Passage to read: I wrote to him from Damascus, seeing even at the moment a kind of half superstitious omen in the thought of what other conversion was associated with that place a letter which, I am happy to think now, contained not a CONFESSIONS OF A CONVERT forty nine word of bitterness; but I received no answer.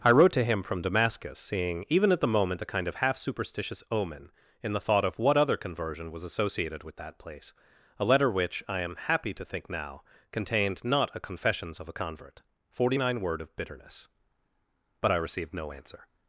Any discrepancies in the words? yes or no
no